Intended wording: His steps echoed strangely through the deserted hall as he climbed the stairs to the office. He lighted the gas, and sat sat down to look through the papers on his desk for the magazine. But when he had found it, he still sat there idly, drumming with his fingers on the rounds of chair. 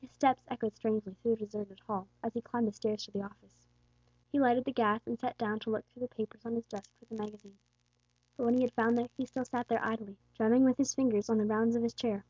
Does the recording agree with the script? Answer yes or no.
no